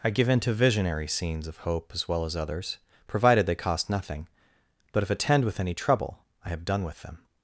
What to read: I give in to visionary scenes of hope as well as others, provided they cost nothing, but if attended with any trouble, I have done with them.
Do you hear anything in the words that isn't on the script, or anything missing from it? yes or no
yes